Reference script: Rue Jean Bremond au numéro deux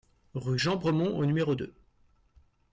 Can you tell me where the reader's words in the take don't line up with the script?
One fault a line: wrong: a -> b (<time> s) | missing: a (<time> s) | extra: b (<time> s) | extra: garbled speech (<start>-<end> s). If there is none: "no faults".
no faults